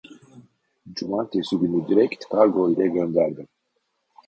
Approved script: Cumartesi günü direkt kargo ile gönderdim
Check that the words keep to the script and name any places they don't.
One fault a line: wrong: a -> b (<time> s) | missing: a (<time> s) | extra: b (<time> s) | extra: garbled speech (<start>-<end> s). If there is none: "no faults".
no faults